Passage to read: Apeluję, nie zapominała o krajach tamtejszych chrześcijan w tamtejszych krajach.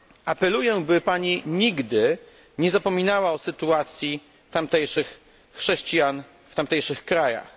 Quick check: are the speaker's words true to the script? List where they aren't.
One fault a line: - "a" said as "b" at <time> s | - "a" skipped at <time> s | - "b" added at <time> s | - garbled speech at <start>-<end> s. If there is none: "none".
- "by Pani nigdy" added at 0.8 s
- "krajach" said as "sytuacji" at 3.4 s